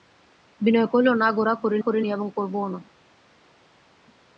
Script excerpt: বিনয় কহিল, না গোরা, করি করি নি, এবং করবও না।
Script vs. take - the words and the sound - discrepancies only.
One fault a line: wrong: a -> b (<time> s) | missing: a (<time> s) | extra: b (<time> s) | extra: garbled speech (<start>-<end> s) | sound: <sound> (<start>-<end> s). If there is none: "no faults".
no faults